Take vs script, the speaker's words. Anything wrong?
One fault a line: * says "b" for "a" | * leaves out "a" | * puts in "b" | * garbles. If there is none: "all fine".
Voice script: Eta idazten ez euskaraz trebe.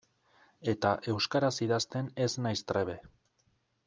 * puts in "euskaraz"
* says "naiz" for "euskaraz"